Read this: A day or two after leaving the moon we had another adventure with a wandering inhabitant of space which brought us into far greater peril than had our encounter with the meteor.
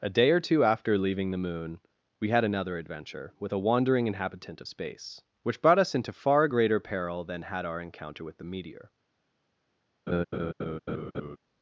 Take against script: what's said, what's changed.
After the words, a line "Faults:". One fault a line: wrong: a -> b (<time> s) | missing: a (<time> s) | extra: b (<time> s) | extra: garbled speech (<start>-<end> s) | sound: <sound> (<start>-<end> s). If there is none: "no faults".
A day or two after leaving the moon we had another adventure with a wandering inhabitant of space which brought us into far greater peril than had our encounter with the meteor.
Faults:
sound: laugh (10.1-11.4 s)